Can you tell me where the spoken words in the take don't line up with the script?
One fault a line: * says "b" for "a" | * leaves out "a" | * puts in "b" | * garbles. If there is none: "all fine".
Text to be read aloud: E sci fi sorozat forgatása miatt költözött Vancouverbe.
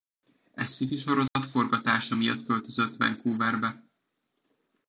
all fine